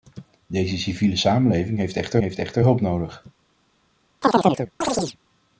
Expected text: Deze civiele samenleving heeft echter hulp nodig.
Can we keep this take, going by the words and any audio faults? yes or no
no